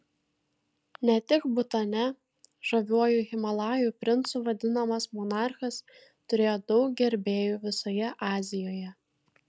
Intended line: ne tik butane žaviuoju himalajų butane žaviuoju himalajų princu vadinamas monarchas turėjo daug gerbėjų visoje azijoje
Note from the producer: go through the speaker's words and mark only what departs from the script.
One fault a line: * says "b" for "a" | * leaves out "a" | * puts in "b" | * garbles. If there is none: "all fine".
* leaves out "butane žaviuoju himalajų"